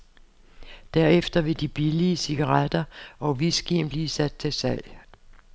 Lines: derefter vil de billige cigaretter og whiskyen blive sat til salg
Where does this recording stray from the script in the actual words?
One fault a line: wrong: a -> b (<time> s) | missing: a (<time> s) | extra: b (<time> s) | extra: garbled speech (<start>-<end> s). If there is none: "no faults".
no faults